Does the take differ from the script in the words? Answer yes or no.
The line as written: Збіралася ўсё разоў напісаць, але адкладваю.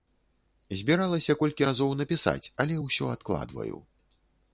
yes